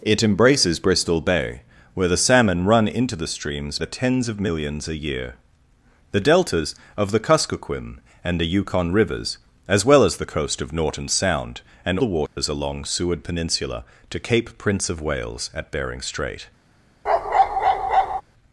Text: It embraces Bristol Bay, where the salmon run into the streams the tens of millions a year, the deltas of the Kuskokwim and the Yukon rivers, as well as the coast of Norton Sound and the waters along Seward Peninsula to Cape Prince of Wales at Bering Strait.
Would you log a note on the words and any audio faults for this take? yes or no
yes